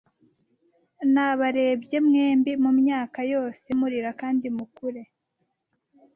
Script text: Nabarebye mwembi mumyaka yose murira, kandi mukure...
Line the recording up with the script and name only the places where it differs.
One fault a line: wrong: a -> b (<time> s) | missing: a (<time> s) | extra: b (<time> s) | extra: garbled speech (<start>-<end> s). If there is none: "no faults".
no faults